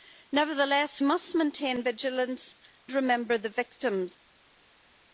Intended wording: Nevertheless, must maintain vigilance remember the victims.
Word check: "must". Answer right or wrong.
right